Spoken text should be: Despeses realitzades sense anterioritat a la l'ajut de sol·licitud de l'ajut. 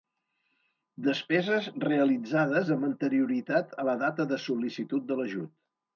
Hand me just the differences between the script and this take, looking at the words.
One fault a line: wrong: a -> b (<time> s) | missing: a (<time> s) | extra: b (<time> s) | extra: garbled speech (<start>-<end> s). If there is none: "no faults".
wrong: sense -> amb (2.8 s)
wrong: l'ajut -> data (4.0 s)